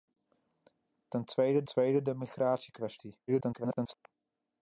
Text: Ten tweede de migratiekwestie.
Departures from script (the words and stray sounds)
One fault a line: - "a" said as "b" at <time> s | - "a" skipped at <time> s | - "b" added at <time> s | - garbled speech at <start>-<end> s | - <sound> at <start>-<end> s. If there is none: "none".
- "tweede" added at 1.6 s
- garbled speech at 3.3-3.9 s